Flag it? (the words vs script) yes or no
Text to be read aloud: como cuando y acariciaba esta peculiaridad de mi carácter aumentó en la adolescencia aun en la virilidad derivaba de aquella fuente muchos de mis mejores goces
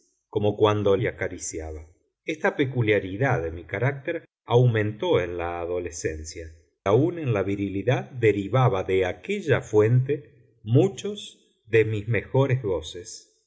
no